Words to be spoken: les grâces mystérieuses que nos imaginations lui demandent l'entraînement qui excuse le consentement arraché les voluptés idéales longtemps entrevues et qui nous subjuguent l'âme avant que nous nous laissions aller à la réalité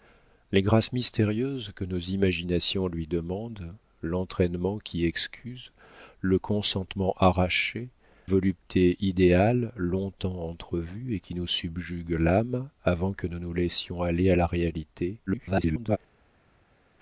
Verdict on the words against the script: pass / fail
fail